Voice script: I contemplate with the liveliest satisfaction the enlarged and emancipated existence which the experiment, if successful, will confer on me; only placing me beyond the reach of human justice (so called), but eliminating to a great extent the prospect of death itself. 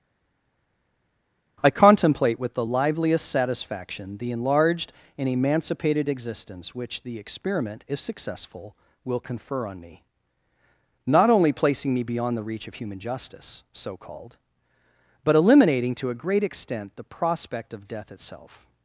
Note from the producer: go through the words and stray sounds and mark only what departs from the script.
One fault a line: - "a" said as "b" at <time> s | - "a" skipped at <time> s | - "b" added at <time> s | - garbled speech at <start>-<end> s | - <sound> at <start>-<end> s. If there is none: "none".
- "not" added at 11.1 s